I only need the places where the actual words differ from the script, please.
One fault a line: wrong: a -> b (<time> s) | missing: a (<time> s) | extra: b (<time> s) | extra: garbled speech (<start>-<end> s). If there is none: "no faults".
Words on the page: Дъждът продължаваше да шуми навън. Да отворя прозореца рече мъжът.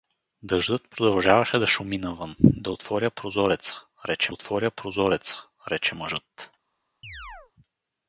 extra: отворя прозореца рече (4.3 s)